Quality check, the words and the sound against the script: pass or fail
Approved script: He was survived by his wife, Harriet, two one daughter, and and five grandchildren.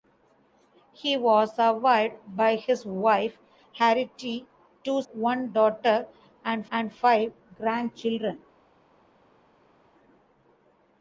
pass